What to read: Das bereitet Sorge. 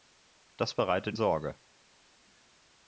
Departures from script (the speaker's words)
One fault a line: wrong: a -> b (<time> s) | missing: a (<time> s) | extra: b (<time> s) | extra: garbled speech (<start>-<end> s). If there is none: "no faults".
no faults